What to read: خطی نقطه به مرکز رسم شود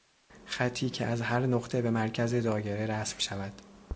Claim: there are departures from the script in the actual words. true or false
true